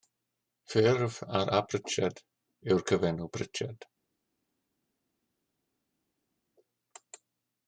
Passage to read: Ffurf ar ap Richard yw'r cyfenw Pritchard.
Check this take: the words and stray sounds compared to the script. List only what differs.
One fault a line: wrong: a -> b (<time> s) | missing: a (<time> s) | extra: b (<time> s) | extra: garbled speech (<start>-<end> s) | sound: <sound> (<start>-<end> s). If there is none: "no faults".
no faults